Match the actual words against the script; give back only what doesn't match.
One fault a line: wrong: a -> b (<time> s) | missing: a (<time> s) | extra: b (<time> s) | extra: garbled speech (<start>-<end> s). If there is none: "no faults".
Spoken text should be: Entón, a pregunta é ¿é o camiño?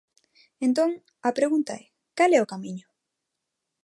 extra: cal (2.2 s)